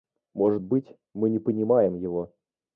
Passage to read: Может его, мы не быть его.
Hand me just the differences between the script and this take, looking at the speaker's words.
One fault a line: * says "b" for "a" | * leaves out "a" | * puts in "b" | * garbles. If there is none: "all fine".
* says "быть" for "его"
* says "понимаем" for "быть"